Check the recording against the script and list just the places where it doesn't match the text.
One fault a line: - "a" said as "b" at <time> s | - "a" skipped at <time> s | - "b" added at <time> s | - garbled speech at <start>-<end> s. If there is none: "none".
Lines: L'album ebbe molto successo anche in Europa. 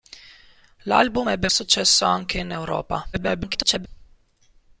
- "molto" skipped at 1.5 s
- garbled speech at 3.1-3.9 s